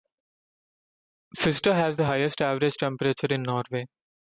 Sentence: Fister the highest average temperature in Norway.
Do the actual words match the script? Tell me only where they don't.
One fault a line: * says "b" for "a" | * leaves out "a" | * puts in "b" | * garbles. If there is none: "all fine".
* puts in "has"